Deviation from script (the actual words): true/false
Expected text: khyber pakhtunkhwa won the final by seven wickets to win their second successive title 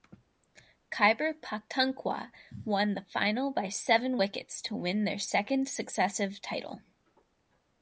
false